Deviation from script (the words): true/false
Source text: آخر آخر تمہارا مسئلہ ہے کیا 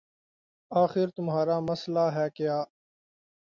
true